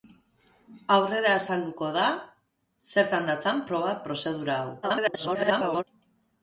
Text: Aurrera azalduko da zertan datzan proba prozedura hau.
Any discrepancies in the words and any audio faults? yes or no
yes